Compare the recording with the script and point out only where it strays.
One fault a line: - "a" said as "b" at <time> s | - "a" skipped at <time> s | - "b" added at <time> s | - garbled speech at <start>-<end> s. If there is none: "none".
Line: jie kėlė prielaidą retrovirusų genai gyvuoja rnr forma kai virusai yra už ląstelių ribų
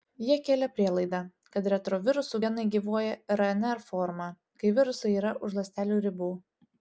- "kad" added at 1.6 s